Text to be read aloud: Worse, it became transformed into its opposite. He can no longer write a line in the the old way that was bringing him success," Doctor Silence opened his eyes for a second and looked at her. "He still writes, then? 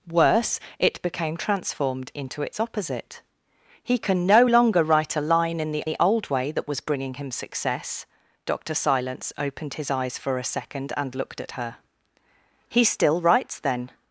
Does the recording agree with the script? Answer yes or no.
yes